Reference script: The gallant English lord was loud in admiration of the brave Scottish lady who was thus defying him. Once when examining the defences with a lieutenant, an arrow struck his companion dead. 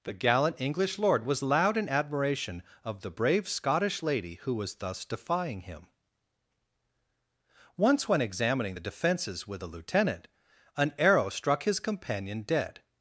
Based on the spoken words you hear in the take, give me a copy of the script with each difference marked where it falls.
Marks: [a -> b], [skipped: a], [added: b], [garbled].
The gallant English lord was loud in admiration of the brave Scottish lady who was thus defying him. Once when examining the defences with a lieutenant, an arrow struck his companion dead.